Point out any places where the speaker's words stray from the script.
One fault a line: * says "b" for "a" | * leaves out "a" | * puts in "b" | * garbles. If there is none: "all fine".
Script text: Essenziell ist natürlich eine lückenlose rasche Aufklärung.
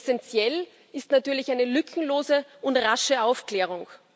* puts in "und"